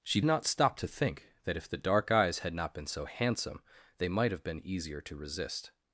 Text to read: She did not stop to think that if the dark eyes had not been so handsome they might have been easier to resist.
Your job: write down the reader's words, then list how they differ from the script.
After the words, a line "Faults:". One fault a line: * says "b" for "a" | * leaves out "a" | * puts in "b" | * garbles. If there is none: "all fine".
She not stop to think that if the dark eyes had not been so handsome they might have been easier to resist.
Faults:
* leaves out "did"